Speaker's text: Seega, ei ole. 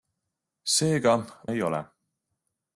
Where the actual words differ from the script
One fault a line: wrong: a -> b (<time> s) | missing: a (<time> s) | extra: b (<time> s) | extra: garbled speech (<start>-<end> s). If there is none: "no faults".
no faults